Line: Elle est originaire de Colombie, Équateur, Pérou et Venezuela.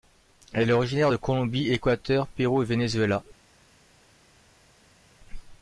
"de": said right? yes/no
yes